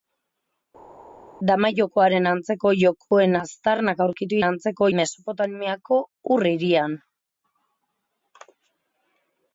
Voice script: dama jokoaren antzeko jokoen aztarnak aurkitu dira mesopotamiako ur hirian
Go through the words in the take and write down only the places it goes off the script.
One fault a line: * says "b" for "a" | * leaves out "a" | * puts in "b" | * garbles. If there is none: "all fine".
* says "antzeko" for "dira"